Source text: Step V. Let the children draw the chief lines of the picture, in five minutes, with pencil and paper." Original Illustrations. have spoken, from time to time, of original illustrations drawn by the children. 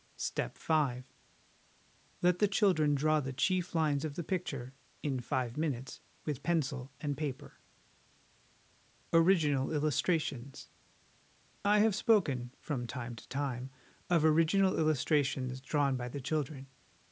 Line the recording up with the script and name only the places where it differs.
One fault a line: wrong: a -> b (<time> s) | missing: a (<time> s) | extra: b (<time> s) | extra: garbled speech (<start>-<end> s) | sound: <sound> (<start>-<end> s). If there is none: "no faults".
extra: I (11.7 s)